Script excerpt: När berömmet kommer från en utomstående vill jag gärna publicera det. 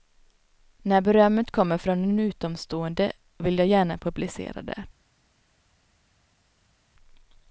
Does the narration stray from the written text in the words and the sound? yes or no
no